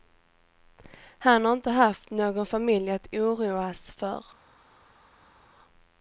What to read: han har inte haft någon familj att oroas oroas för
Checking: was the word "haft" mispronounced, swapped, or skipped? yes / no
no